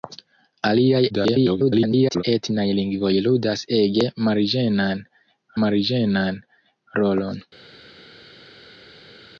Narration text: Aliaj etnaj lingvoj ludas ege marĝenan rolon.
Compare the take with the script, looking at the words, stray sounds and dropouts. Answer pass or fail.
fail